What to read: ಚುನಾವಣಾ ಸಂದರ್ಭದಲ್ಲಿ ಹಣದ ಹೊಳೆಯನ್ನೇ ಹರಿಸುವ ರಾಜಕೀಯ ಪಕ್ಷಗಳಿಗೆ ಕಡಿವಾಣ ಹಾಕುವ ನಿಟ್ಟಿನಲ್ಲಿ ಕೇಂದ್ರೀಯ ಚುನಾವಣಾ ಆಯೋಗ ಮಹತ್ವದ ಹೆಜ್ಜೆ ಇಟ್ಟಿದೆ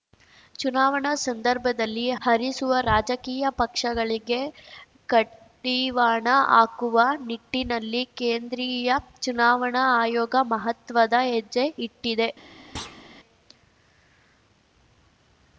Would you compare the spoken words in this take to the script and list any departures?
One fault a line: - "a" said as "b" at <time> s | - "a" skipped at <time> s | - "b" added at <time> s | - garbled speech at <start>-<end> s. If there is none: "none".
- "ಹಣದ ಹೊಳೆಯನ್ನೇ" skipped at 2.0 s